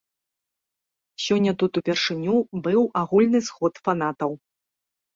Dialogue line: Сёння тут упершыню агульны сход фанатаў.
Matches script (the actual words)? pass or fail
fail